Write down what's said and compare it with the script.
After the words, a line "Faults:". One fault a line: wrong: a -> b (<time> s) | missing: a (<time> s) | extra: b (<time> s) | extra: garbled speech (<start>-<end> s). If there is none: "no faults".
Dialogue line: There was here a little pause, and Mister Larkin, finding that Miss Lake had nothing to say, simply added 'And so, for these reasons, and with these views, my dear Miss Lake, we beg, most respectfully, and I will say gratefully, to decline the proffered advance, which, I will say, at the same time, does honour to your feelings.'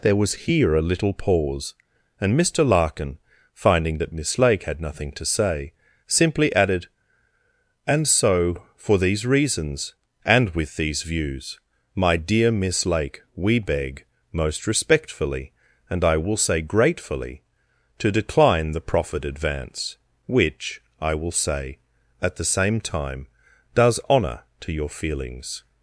There was here a little pause, and Mister Larkin, finding that Miss Lake had nothing to say, simply added 'And so, for these reasons, and with these views, my dear Miss Lake, we beg, most respectfully, and I will say gratefully, to decline the proffered advance, which, I will say, at the same time, does honour to your feelings.'
Faults:
no faults